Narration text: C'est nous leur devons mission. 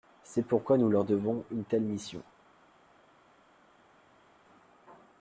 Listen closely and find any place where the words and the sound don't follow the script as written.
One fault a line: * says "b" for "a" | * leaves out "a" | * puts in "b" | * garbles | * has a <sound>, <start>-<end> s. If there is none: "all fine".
* puts in "pourquoi"
* puts in "une telle"